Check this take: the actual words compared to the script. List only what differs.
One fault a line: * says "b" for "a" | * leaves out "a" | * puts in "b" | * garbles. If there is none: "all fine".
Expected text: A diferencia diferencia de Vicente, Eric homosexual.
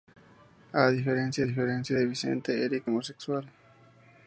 all fine